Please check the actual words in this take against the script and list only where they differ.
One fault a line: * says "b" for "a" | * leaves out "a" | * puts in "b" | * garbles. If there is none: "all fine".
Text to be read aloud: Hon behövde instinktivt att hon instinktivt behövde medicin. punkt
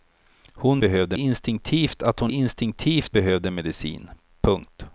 all fine